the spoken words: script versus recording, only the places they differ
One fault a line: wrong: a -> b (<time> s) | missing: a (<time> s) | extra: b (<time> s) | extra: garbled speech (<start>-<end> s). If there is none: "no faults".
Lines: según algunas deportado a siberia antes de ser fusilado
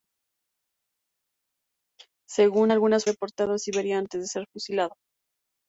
no faults